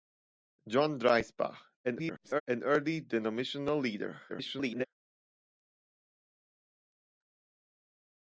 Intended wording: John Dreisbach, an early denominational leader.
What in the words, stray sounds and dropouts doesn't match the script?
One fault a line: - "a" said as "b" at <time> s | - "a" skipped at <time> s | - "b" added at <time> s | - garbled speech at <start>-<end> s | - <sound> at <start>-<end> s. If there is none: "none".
- garbled speech at 1.8-2.4 s
- garbled speech at 4.3-4.9 s